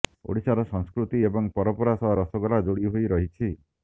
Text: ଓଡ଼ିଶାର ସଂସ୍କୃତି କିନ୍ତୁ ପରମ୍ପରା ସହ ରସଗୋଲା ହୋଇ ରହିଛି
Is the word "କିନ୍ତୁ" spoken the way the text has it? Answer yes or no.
no